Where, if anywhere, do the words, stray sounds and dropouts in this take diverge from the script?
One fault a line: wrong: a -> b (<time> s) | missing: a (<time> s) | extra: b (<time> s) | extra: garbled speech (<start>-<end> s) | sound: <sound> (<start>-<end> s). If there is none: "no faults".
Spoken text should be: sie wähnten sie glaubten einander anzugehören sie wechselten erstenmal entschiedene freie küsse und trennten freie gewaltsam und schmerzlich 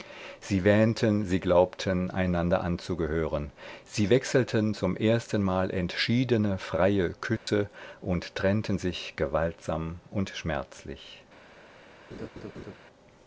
extra: zum (4.7 s)
sound: dropout (7.4-7.5 s)
wrong: freie -> sich (8.8 s)
sound: laugh (12.1-12.8 s)